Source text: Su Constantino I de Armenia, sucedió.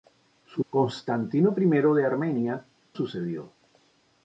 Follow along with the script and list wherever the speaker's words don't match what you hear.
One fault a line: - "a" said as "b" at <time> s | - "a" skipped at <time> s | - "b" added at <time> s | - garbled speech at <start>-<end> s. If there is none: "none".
none